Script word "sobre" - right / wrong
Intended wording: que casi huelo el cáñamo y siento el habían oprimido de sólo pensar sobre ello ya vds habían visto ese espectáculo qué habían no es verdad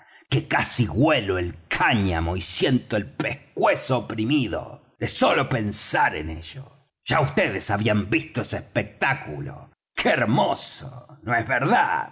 wrong